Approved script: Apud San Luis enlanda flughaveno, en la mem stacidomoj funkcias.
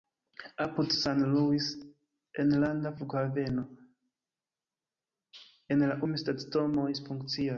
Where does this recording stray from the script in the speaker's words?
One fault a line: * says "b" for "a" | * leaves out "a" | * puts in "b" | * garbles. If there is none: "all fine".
all fine